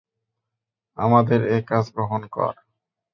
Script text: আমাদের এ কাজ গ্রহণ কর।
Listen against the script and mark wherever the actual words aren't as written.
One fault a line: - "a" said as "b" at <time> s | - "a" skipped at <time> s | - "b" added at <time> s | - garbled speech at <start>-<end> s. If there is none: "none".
none